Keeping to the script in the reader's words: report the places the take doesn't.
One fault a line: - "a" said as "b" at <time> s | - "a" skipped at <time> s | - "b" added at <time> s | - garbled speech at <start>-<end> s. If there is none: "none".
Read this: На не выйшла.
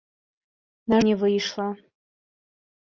none